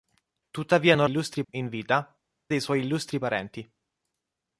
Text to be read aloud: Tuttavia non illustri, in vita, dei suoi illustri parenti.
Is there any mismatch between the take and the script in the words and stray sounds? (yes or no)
no